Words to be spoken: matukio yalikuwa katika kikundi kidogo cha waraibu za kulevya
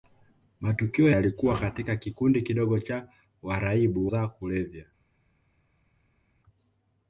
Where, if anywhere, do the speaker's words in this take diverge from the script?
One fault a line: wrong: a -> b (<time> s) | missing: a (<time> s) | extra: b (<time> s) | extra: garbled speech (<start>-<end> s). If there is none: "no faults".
no faults